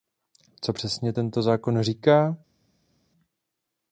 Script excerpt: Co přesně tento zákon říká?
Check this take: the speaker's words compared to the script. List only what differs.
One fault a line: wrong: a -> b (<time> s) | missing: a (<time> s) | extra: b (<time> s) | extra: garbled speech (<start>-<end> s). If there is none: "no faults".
no faults